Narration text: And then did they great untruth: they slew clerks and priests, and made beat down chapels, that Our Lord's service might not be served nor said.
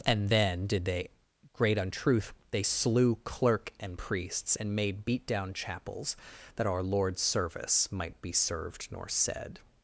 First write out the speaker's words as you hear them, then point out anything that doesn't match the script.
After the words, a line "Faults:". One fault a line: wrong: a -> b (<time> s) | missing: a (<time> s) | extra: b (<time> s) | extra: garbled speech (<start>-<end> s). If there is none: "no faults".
And then did they great untruth: they slew clerk and priests, and made beat down chapels, that Our Lord's service might be served nor said.
Faults:
wrong: clerks -> clerk (3.2 s)
missing: not (8.2 s)